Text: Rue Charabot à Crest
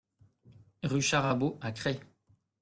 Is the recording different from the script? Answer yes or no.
no